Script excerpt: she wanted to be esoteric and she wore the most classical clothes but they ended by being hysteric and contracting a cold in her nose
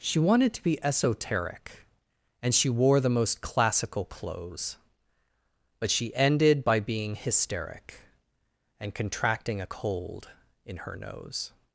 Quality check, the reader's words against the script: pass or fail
fail